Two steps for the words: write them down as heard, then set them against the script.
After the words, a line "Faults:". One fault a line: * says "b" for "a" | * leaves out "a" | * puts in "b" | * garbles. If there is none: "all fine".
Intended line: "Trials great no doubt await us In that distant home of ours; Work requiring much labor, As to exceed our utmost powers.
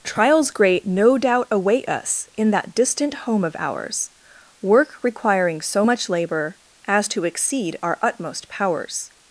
"Trials great no doubt await us In that distant home of ours; Work requiring so much labor, As to exceed our utmost powers.
Faults:
* puts in "so"